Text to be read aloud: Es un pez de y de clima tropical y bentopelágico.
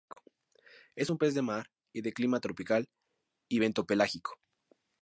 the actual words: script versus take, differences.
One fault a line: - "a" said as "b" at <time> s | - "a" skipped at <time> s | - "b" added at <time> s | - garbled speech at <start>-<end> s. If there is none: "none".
- "mar" added at 1.4 s